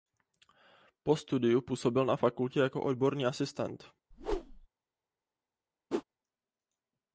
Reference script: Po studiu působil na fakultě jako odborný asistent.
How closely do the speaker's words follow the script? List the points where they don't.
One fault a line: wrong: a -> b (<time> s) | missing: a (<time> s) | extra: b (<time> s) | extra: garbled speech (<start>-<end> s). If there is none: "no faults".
no faults